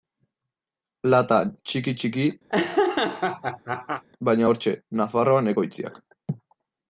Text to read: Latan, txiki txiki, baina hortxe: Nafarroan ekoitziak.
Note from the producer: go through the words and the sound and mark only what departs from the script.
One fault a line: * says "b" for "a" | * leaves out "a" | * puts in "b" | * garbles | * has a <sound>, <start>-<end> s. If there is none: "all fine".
* has a laugh, 2.5-4.0 s